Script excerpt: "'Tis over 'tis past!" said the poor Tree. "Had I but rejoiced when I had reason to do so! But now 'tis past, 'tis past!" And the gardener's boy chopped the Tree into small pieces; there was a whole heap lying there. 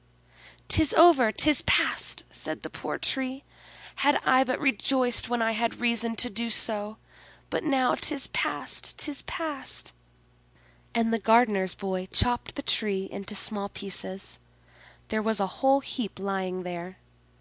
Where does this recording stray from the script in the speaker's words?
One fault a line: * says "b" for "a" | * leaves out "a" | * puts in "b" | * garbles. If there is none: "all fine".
all fine